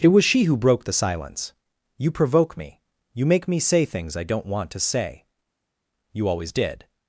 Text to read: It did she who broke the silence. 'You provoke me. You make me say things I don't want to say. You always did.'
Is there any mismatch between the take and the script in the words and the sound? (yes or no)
yes